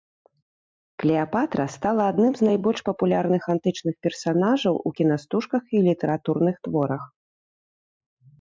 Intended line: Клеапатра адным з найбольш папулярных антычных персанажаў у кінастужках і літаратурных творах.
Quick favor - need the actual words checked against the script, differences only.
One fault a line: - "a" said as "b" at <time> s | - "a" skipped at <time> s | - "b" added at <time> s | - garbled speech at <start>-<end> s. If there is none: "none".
- "стала" added at 1.8 s